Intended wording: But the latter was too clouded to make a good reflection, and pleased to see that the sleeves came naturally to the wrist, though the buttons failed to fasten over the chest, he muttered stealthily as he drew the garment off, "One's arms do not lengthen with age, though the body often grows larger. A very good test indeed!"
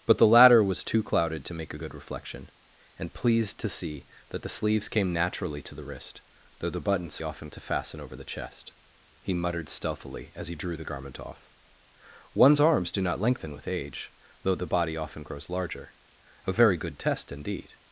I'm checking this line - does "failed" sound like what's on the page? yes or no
no